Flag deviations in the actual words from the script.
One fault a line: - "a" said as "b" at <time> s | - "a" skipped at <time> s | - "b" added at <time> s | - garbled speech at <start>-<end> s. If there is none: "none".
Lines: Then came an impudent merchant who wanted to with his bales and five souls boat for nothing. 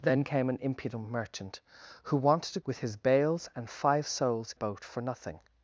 none